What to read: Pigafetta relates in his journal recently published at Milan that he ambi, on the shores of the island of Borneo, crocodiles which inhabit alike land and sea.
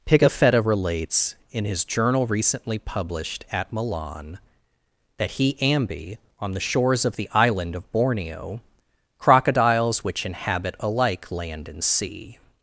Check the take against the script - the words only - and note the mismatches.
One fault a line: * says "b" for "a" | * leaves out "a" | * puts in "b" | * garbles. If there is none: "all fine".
all fine